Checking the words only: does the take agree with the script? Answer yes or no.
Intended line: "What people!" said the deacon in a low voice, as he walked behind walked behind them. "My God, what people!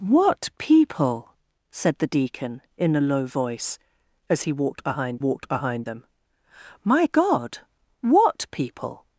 yes